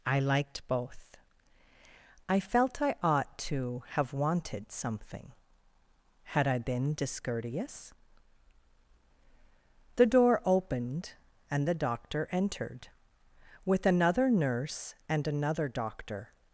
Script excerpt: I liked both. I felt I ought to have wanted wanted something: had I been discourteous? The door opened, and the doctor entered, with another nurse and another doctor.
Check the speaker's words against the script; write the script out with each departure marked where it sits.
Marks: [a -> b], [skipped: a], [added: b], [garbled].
I liked both. I felt I ought to have wanted [skipped: wanted] something: had I been discourteous? The door opened, and the doctor entered, with another nurse and another doctor.